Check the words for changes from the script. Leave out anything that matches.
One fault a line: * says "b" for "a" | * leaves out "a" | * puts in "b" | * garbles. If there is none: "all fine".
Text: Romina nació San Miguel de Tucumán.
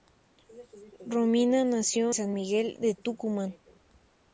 all fine